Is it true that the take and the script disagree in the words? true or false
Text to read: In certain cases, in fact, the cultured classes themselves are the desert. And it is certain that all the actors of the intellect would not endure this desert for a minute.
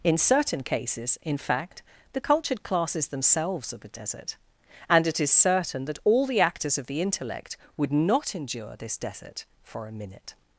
false